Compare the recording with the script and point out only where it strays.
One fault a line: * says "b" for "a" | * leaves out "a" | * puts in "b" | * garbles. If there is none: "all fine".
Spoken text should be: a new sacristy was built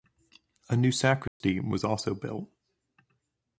* puts in "also"